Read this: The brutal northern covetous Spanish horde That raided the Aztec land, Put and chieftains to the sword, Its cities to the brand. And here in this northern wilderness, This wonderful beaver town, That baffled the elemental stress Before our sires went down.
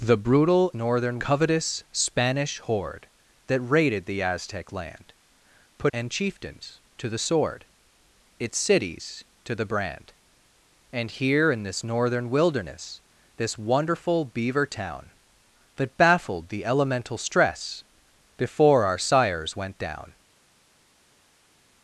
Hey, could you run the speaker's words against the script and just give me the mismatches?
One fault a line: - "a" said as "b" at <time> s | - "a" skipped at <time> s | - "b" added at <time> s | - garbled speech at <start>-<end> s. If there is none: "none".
none